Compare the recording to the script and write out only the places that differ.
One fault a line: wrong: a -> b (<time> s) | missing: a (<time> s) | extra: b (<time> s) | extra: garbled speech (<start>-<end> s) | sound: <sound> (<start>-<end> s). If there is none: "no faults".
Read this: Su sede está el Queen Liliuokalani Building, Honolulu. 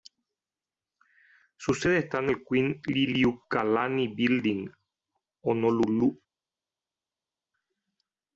extra: en (2.2 s)